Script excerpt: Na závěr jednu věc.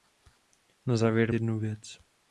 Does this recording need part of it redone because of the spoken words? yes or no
no